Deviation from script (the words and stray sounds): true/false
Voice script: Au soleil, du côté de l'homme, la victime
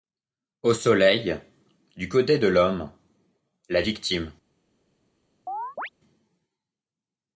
true